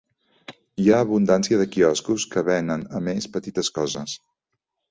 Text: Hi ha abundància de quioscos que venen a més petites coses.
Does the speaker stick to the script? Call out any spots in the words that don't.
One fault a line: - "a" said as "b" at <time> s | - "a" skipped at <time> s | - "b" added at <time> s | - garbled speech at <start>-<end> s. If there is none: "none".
none